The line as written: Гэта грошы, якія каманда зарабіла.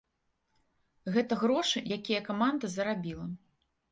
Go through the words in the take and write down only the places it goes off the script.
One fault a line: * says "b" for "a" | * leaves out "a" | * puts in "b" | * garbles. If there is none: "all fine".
all fine